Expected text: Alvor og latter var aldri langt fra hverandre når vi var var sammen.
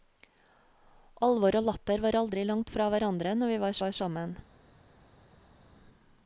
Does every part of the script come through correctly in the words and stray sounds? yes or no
yes